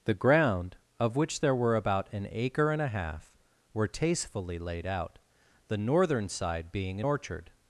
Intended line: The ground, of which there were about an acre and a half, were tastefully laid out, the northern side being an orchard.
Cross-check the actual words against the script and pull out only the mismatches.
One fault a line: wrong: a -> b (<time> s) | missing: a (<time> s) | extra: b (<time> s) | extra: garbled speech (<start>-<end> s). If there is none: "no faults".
no faults